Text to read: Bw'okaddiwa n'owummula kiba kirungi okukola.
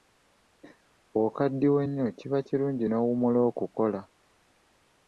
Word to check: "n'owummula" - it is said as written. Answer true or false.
false